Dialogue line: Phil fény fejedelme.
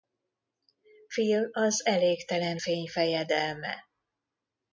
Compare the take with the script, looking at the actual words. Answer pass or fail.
fail